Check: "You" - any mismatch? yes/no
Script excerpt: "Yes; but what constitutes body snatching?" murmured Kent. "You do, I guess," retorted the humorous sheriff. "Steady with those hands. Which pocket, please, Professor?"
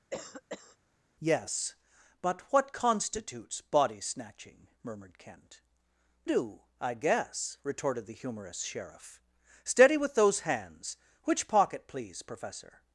yes